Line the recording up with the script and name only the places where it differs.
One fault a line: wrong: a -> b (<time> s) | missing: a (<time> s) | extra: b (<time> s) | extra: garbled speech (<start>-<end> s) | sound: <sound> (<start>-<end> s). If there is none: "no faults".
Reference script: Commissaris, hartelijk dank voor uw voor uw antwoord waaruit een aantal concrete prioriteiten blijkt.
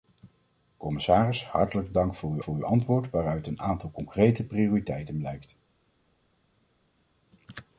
no faults